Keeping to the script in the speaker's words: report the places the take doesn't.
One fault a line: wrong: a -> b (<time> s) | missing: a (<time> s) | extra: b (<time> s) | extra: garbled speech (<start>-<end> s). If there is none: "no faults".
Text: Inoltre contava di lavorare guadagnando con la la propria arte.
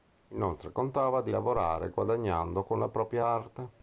missing: la (2.9 s)